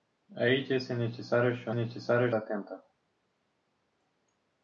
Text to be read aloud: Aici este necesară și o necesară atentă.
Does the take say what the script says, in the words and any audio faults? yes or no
yes